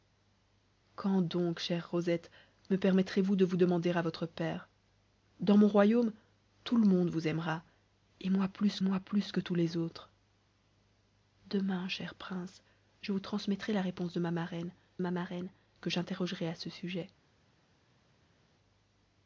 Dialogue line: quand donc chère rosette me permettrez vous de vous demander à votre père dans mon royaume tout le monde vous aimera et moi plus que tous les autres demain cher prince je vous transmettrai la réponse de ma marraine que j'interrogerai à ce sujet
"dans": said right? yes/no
yes